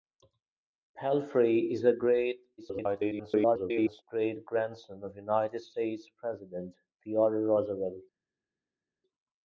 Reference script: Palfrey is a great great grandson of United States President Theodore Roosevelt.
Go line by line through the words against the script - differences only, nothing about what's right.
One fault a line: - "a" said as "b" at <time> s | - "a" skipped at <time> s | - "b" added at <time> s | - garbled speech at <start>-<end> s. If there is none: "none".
- garbled speech at 2.6-4.0 s